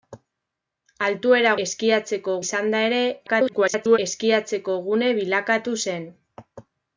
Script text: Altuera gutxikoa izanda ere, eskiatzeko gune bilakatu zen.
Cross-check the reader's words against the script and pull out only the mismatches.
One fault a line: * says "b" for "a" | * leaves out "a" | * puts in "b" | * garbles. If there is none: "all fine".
* says "eskiatzeko" for "gutxikoa"
* garbles